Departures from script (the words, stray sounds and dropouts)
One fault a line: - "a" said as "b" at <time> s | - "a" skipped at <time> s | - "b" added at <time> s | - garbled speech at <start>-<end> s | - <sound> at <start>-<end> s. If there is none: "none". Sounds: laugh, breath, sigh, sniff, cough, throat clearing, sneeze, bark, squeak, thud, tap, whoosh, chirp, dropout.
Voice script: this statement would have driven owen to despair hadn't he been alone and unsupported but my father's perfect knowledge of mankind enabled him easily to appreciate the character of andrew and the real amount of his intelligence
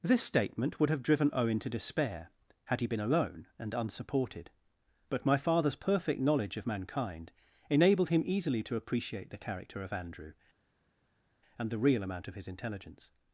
- "hadn't" said as "had" at 2.6 s